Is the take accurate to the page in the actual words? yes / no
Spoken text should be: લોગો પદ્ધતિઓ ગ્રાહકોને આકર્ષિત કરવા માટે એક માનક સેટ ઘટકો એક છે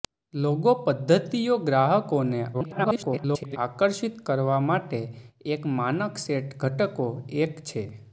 no